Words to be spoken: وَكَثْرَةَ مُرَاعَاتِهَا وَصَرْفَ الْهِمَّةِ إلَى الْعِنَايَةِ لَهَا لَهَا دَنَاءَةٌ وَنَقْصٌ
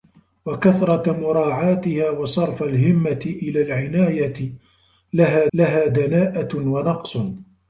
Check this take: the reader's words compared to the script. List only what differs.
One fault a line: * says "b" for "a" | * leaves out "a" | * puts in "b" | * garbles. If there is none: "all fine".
all fine